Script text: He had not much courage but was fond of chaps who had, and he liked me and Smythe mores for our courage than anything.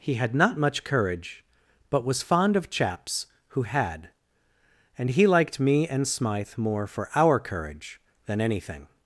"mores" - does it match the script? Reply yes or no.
no